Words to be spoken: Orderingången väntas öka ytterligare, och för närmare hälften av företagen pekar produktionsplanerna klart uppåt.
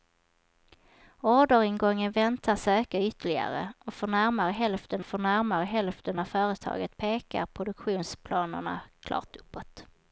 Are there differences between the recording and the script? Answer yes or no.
yes